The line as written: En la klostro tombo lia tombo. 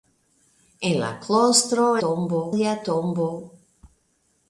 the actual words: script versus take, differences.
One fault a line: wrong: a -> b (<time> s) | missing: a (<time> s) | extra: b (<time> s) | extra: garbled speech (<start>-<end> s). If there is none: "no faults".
no faults